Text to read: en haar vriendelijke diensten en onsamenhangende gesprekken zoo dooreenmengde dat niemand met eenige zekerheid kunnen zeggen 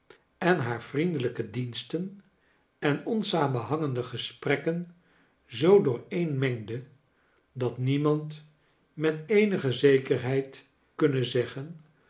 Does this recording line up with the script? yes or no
yes